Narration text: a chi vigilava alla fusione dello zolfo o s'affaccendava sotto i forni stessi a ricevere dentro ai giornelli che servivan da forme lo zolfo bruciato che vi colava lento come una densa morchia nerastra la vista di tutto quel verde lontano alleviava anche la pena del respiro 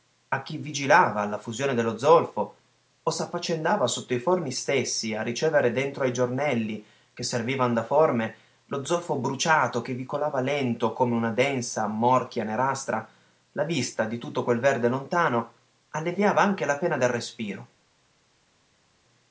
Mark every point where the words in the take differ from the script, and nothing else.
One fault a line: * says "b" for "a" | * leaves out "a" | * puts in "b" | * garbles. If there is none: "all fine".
all fine